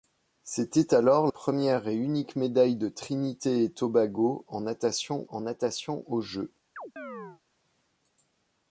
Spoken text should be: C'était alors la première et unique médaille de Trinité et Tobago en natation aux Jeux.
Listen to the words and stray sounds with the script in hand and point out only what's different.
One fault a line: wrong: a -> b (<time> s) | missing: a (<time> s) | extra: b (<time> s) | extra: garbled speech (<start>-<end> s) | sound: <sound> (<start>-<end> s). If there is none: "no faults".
missing: la (1.3 s)
extra: en natation (5.3 s)
sound: chirp (6.8-7.4 s)